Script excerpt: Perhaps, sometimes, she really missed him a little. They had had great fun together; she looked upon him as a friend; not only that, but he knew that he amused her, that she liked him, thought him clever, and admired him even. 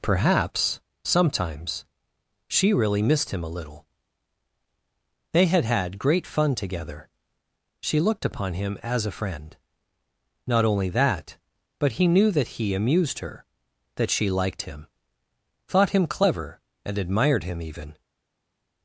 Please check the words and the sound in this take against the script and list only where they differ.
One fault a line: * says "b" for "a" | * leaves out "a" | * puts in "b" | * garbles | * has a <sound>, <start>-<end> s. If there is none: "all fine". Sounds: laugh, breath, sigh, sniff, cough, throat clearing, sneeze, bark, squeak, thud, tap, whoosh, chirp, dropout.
all fine